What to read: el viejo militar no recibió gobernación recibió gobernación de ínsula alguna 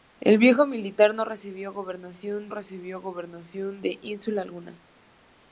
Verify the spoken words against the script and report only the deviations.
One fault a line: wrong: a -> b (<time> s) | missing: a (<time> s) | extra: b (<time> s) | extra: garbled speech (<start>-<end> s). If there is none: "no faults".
no faults